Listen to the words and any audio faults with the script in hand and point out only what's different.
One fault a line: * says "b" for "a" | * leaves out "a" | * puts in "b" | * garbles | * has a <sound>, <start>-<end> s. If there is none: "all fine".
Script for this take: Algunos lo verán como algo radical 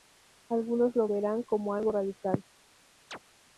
* has a chirp, 3.1-3.2 s